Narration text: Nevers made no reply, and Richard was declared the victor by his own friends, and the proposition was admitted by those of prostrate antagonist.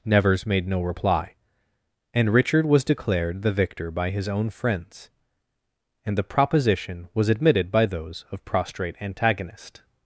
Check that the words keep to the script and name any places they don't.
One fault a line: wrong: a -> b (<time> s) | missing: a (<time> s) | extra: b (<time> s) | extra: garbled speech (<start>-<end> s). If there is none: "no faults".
no faults